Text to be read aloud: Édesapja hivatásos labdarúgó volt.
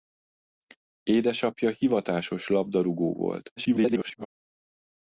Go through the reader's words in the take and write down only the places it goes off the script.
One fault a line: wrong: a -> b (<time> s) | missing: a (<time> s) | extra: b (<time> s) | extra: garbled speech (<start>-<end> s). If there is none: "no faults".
extra: garbled speech (3.6-4.3 s)